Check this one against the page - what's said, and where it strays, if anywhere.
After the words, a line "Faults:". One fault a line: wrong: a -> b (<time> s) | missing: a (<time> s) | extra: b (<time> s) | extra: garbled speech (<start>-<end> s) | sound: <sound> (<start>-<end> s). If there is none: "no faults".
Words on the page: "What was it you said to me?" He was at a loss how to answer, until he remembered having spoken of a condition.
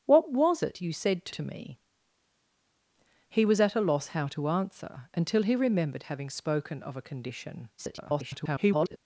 "What was it you said to to me?" He was at a loss how to answer, until he remembered having spoken of a condition. [garbled]
Faults:
extra: to (1.3 s)
extra: garbled speech (7.8-9.0 s)